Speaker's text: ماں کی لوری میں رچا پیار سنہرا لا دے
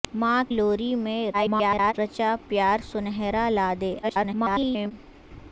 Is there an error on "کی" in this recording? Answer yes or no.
yes